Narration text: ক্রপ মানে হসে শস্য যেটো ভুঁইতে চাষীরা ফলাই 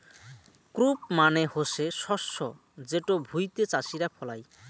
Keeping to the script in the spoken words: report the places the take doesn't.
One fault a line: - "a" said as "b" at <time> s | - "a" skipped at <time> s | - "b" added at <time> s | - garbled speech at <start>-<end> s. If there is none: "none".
none